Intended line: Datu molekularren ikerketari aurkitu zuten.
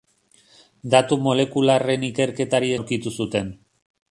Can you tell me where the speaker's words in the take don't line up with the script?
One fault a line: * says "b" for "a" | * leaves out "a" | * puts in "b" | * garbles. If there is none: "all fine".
all fine